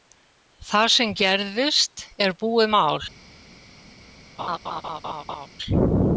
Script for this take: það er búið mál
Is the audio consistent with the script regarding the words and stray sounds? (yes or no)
no